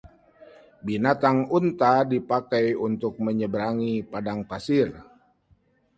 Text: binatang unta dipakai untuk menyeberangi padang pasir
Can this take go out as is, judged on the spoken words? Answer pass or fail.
pass